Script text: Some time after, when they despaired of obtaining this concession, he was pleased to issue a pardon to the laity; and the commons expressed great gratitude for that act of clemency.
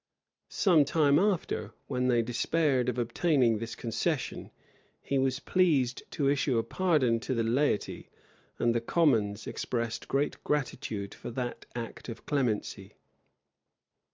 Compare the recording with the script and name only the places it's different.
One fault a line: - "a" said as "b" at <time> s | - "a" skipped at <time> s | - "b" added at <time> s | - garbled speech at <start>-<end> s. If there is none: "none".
none